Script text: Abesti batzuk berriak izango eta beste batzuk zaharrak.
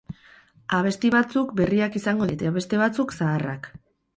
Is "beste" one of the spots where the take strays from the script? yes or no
no